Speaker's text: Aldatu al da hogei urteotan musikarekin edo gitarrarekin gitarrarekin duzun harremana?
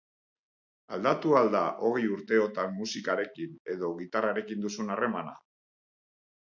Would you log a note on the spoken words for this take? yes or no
yes